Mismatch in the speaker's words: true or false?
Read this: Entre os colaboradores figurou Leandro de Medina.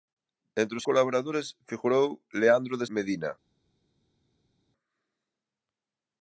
false